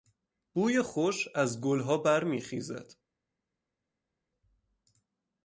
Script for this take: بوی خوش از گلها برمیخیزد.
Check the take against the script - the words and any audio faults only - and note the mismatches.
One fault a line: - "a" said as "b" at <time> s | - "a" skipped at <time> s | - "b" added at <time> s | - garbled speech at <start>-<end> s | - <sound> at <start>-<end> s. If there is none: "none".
none